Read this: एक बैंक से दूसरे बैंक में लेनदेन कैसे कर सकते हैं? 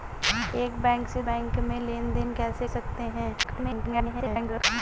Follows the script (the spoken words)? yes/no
no